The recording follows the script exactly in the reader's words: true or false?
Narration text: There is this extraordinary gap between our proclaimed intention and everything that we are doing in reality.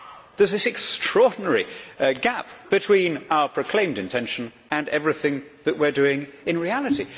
true